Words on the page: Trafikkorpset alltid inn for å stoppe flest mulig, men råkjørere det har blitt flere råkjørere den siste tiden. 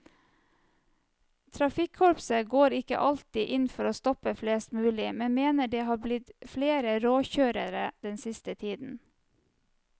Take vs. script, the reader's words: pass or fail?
fail